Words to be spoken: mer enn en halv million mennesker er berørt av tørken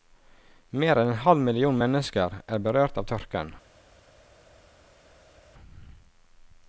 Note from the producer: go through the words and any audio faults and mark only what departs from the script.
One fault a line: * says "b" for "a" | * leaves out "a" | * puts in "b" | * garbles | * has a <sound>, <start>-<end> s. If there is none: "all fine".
all fine